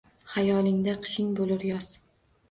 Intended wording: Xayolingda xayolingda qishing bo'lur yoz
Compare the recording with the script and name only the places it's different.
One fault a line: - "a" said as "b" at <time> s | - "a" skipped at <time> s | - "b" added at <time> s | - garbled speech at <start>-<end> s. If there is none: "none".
- "xayolingda" skipped at 0.9 s